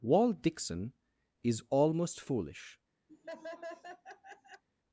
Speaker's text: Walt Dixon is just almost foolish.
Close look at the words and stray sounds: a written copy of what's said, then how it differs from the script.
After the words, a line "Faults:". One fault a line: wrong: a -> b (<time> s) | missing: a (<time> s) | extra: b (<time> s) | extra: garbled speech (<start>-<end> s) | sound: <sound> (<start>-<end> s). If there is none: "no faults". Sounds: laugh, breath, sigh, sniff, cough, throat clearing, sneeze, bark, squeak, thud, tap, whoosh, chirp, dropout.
Walt Dixon is almost foolish.
Faults:
missing: just (1.6 s)
sound: laugh (3.1-4.6 s)